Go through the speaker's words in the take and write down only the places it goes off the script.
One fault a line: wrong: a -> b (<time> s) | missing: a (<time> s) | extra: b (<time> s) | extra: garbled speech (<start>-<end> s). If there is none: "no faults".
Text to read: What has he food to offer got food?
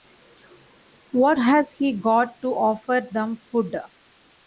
wrong: food -> got (1.9 s)
wrong: got -> them (3.1 s)